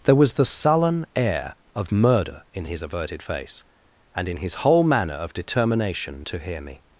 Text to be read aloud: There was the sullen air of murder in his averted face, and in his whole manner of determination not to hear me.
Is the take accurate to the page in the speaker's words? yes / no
no